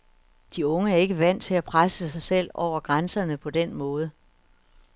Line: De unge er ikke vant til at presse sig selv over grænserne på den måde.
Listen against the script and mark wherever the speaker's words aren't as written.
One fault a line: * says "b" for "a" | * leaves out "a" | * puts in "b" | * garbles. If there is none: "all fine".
all fine